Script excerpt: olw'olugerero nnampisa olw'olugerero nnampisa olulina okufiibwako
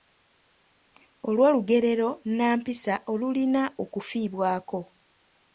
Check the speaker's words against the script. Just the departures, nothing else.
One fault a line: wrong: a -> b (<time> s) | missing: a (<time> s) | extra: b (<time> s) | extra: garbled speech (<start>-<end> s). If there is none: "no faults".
missing: olw'olugerero nnampisa (2.9 s)